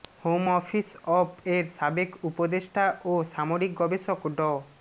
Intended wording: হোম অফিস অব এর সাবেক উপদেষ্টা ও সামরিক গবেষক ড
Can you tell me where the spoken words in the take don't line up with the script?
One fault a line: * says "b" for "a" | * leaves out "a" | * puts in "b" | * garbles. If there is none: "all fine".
all fine